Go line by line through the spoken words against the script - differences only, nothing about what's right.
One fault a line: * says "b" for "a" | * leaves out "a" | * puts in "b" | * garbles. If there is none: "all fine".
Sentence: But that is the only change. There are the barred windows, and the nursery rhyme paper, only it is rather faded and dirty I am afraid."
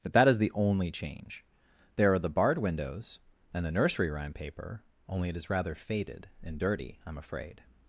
all fine